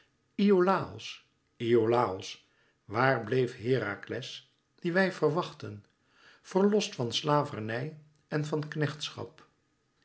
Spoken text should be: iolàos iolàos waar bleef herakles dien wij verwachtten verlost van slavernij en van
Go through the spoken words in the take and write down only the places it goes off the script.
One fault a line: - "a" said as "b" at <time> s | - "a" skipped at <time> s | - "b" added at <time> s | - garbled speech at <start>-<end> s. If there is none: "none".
none